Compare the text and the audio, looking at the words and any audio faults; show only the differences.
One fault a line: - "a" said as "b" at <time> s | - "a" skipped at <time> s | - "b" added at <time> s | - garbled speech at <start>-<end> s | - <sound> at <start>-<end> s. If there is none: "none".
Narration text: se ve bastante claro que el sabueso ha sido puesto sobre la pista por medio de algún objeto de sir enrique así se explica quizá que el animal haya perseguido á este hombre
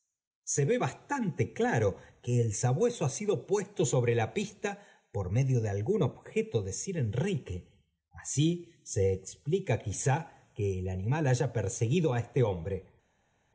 none